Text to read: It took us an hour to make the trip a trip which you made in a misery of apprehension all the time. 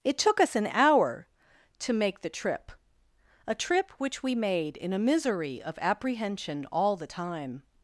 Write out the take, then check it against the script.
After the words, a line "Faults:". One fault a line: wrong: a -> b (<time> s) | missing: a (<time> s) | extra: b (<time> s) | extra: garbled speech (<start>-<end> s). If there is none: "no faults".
It took us an hour to make the trip a trip which we made in a misery of apprehension all the time.
Faults:
wrong: you -> we (4.2 s)